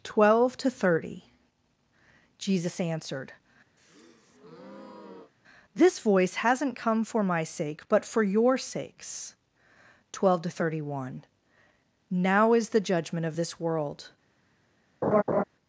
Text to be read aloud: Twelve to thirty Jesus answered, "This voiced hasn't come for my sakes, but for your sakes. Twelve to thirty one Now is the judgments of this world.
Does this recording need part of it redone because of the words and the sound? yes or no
yes